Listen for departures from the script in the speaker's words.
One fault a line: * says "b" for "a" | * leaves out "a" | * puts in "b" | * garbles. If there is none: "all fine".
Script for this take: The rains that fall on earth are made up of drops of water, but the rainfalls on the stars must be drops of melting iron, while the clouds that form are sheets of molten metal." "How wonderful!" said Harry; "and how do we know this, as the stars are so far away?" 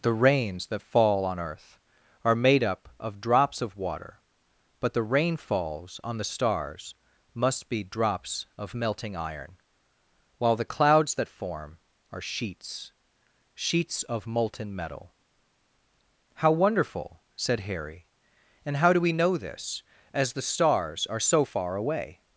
* puts in "sheets"